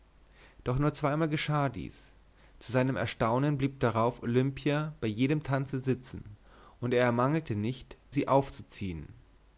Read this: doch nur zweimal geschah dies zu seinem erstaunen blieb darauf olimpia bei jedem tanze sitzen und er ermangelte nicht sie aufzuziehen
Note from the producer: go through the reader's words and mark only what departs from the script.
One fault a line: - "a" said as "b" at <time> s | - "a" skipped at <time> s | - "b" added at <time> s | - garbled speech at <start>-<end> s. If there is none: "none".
none